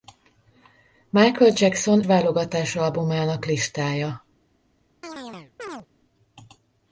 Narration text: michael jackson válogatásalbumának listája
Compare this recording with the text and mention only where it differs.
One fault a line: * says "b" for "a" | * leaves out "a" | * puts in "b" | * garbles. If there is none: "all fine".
all fine